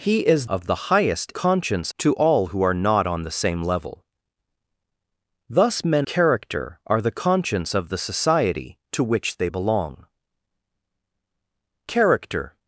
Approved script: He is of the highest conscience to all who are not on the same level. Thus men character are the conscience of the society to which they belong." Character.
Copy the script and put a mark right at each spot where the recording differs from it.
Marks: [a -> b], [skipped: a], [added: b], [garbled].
He is of the highest conscience to all who are not on the same level. Thus men character are the conscience of the society to which they belong." Character.